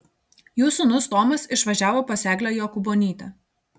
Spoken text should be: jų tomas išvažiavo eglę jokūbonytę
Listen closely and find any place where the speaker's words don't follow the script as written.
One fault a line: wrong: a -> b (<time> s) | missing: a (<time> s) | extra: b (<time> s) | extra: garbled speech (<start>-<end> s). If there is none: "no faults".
extra: sūnus (0.8 s)
extra: pas (2.1 s)